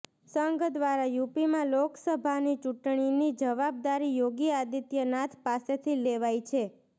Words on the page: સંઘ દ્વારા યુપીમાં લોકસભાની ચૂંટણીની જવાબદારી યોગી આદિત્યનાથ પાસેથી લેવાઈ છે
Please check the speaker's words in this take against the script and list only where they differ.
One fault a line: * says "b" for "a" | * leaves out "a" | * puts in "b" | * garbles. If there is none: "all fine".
all fine